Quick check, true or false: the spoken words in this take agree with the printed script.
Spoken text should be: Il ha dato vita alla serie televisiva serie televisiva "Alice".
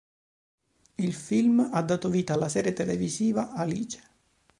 false